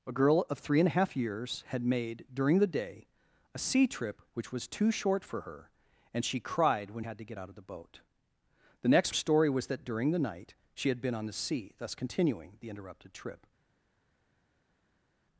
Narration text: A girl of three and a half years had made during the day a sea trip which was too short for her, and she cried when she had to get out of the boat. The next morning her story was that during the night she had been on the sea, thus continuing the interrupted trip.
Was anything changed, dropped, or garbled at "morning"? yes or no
yes